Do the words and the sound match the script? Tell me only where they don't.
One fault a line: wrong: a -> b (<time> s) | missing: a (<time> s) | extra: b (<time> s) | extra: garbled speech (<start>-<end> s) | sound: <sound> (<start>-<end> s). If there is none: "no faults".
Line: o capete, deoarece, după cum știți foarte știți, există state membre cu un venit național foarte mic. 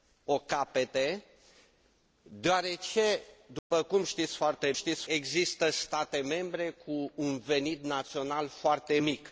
sound: dropout (3.6-3.7 s)